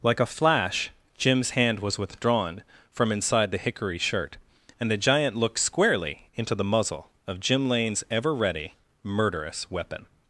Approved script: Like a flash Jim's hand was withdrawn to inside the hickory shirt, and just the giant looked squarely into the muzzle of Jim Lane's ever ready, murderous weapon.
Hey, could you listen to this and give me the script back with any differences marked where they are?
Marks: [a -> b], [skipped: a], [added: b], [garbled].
Like a flash Jim's hand was withdrawn [to -> from] inside the hickory shirt, and [skipped: just] the giant looked squarely into the muzzle of Jim Lane's ever ready, murderous weapon.